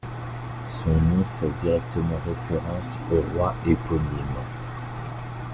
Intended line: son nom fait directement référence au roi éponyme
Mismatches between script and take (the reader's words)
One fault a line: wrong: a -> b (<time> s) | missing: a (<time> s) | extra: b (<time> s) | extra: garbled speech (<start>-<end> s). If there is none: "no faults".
no faults